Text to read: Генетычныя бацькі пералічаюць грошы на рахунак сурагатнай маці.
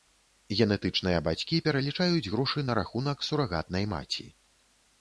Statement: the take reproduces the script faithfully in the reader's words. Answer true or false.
true